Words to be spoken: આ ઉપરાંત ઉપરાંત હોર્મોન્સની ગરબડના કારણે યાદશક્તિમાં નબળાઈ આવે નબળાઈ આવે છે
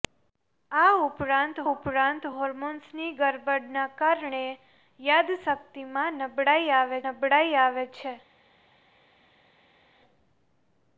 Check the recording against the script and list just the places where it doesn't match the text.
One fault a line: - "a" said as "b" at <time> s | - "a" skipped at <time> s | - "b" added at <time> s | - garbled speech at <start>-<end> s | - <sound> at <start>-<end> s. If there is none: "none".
none